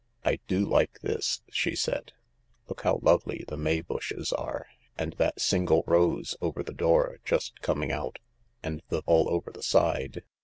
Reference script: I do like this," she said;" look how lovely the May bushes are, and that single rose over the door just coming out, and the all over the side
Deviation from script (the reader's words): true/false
false